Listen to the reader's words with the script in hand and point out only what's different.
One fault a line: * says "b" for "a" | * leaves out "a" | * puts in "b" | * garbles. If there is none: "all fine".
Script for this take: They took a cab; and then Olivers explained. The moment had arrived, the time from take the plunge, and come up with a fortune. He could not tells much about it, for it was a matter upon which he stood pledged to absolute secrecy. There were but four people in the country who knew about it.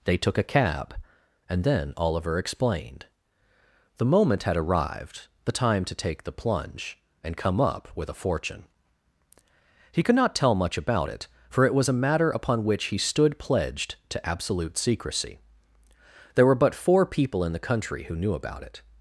* says "Oliver" for "Olivers"
* says "to" for "from"
* says "tell" for "tells"